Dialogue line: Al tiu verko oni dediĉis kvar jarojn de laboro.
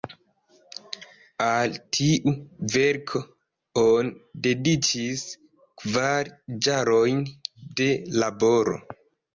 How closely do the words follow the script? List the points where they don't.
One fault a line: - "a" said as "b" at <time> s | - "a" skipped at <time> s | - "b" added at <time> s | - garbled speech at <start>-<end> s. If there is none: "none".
none